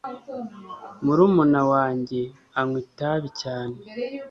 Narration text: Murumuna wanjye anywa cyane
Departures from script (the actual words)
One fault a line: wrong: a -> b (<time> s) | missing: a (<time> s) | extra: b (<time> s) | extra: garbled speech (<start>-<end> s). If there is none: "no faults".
extra: itabi (2.9 s)